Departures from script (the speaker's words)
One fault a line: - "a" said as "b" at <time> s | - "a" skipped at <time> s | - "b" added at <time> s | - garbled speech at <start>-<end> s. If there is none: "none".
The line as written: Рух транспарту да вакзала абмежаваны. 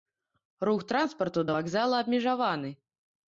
none